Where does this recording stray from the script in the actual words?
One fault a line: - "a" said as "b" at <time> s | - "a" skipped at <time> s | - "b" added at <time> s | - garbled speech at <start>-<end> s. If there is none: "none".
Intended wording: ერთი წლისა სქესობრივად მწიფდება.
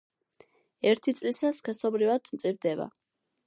none